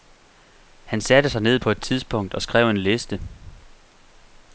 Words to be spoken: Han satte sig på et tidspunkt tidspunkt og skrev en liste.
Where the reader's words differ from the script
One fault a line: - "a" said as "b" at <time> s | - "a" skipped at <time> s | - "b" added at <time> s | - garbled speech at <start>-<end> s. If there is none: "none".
- "ned" added at 1.4 s
- "tidspunkt" skipped at 2.3 s